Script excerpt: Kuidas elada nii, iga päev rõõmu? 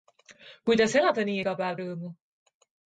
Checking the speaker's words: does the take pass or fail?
pass